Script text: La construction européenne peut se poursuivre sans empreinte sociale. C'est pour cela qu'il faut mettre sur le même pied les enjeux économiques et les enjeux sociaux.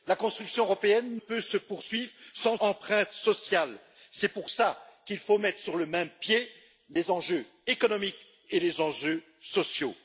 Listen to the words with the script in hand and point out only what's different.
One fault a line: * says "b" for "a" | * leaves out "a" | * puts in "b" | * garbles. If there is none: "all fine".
all fine